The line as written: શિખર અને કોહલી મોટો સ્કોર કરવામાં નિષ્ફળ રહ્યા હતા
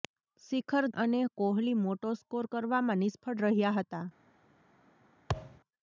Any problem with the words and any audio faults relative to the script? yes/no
yes